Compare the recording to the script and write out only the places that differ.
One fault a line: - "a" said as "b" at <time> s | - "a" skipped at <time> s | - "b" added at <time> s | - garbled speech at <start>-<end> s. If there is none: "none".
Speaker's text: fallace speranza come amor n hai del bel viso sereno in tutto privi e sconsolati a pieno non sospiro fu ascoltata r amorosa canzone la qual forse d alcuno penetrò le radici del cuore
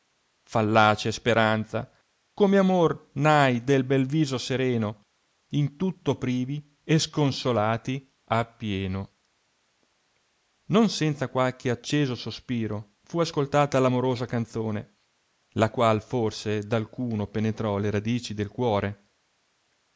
- "senza qualche acceso" added at 10.9 s